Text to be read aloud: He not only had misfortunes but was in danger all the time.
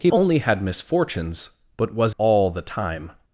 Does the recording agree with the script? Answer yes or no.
no